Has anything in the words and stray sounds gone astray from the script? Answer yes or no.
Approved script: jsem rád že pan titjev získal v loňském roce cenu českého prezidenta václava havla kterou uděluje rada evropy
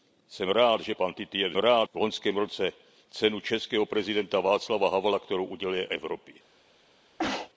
yes